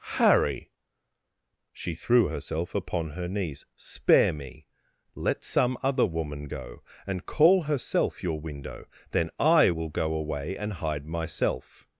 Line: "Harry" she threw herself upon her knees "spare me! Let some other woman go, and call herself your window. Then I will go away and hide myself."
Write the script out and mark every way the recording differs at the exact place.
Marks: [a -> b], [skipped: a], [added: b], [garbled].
"Harry" she threw herself upon her knees "spare me! Let some other woman go, and call herself your window. Then I will go away and hide myself."